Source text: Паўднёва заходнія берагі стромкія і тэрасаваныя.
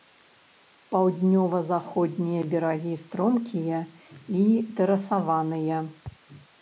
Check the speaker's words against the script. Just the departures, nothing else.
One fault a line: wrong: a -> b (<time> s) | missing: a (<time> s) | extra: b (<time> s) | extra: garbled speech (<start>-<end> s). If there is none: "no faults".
no faults